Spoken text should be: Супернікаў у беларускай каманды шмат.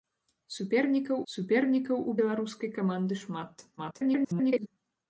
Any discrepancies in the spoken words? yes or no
yes